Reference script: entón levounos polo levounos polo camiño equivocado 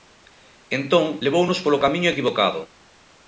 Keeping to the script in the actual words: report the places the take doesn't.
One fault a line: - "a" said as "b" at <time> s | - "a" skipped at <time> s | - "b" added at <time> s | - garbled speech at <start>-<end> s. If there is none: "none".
- "levounos polo" skipped at 1.8 s